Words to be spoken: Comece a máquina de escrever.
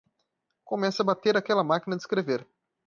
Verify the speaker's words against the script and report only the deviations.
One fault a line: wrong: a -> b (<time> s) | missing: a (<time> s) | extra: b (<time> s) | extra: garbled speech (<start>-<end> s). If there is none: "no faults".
extra: bater aquela (1.1 s)